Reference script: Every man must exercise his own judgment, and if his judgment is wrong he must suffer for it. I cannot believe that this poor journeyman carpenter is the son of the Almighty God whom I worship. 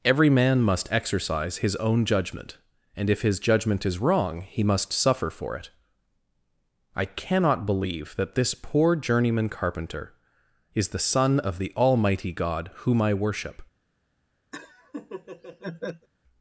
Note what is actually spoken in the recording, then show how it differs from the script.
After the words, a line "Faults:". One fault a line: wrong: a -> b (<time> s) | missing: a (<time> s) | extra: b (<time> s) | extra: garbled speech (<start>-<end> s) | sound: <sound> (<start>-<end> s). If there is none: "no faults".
Every man must exercise his own judgment, and if his judgment is wrong he must suffer for it. I cannot believe that this poor journeyman carpenter is the son of the Almighty God whom I worship.
Faults:
sound: laugh (14.5-16.1 s)